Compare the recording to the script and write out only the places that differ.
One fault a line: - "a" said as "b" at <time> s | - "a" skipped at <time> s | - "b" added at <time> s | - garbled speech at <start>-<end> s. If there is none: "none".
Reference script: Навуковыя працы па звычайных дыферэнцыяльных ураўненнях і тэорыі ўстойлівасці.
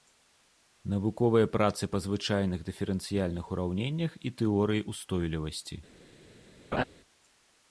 none